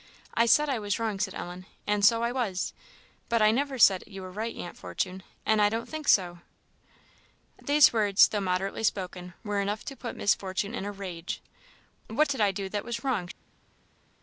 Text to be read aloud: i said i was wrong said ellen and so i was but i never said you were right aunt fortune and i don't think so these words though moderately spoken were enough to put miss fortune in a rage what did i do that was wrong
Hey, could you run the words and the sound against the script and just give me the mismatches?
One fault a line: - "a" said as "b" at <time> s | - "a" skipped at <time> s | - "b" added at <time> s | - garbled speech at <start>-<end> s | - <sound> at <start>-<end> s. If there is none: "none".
none